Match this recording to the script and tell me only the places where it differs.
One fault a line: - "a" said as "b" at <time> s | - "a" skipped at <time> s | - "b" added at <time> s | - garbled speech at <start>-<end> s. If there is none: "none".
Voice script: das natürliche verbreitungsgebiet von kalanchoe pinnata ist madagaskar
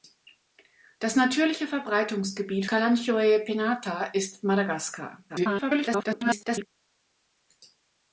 - "von" skipped at 2.6 s
- garbled speech at 5.3-6.7 s